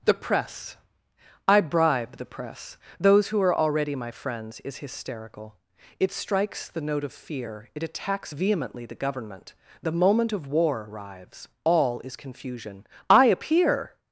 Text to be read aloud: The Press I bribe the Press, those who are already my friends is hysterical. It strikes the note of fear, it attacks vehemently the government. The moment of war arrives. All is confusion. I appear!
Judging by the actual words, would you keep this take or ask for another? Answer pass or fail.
pass